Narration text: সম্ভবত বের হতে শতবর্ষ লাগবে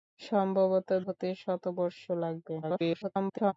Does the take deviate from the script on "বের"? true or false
true